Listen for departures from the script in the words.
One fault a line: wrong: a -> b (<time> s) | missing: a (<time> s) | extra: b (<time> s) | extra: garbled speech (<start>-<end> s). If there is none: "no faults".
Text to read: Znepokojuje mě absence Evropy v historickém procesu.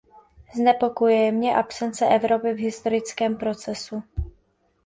no faults